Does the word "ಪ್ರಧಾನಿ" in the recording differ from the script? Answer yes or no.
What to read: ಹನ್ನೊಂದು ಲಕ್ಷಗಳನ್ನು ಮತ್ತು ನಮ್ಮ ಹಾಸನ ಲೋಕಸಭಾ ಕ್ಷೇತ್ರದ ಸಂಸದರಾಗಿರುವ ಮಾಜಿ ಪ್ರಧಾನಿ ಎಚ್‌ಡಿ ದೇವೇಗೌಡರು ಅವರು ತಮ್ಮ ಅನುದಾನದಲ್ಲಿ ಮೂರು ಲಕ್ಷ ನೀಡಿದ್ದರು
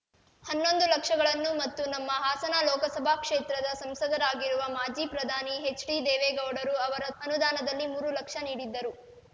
no